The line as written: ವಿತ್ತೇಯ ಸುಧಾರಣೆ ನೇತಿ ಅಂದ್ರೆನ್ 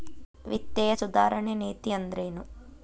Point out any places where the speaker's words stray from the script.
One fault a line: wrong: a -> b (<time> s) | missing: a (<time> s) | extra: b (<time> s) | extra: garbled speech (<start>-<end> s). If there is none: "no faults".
no faults